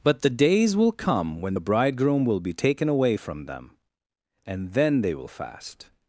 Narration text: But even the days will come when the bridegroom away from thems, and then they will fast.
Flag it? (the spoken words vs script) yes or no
yes